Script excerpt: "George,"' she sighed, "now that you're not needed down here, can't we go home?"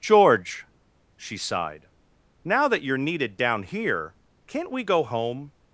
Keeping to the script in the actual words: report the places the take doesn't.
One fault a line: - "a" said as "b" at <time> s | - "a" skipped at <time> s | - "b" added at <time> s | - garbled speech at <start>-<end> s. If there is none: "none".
- "not" skipped at 3.0 s